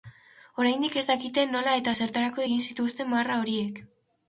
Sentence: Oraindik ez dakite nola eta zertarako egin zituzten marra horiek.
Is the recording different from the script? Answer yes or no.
no